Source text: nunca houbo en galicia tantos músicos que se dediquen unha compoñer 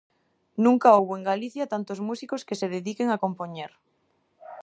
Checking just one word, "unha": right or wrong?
wrong